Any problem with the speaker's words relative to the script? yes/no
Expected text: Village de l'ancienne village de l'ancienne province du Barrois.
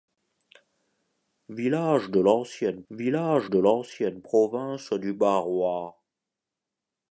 no